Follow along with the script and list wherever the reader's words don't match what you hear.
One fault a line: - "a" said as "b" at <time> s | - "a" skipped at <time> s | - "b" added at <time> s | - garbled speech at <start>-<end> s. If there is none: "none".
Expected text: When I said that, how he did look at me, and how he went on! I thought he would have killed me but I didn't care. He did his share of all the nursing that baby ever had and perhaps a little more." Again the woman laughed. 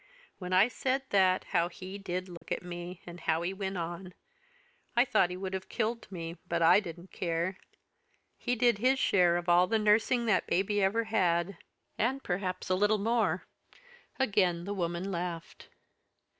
none